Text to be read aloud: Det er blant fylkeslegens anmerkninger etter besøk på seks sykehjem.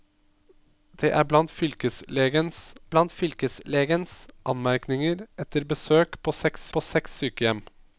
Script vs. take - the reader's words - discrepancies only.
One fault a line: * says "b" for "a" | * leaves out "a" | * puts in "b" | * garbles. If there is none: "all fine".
* puts in "blant fylkeslegens"
* puts in "på seks"